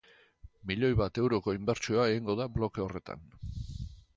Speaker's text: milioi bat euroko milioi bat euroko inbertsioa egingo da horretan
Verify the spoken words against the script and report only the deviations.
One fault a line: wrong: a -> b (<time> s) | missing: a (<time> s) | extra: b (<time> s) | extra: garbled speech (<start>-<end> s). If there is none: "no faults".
missing: milioi bat euroko (1.5 s)
extra: bloke (2.6 s)